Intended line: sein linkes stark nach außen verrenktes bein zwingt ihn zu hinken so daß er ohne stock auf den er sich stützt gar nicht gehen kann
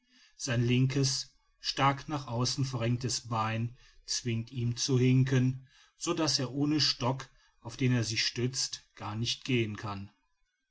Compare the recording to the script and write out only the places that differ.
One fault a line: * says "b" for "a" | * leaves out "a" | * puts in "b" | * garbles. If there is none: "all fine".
all fine